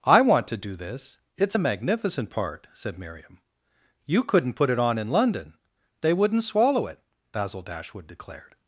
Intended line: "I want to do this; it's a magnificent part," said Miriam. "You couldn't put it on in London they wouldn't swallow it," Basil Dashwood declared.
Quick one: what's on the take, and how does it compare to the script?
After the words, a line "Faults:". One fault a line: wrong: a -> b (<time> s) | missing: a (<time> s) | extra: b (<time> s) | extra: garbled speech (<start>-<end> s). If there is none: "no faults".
"I want to do this; it's a magnificent part," said Miriam. "You couldn't put it on in London they wouldn't swallow it," Basil Dashwood declared.
Faults:
no faults